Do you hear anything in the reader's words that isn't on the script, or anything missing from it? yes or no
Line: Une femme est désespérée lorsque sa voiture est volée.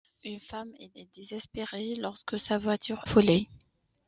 yes